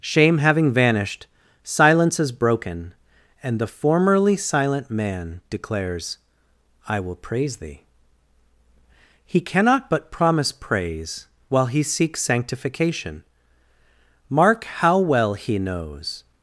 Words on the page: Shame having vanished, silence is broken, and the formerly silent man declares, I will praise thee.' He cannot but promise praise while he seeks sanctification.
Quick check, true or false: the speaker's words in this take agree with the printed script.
false